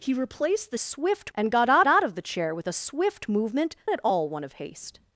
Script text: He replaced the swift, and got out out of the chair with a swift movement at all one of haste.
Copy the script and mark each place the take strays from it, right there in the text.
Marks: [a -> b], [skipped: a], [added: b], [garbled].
He replaced the swift, and got out out of the chair with a swift movement at all one of haste.